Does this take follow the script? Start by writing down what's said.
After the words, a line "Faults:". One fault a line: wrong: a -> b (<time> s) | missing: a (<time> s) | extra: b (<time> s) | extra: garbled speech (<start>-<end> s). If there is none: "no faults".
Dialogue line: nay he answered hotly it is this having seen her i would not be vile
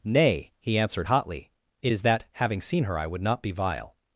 nay he answered hotly it is that having seen her i would not be vile
Faults:
wrong: this -> that (2.0 s)